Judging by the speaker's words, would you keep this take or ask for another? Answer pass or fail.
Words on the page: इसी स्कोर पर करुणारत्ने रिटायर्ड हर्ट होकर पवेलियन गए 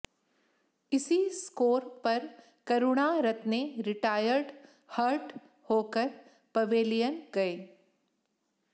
pass